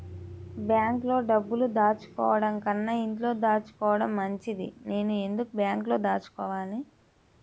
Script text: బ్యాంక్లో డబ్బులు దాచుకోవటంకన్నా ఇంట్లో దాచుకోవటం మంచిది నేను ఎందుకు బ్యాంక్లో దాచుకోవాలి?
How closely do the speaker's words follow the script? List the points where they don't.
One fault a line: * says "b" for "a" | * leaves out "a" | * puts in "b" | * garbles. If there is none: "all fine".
all fine